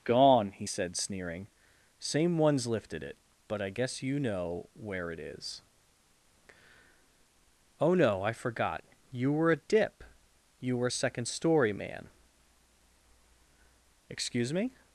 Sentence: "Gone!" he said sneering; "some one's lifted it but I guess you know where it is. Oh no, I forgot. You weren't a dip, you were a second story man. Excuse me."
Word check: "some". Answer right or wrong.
wrong